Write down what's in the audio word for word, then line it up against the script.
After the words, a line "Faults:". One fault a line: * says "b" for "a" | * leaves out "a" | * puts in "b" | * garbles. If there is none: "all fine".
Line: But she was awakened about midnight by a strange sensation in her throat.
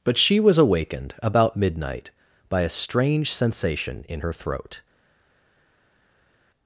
But she was awakened about midnight by a strange sensation in her throat.
Faults:
all fine